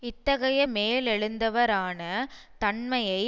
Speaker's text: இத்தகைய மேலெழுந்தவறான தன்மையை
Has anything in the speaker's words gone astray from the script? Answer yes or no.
no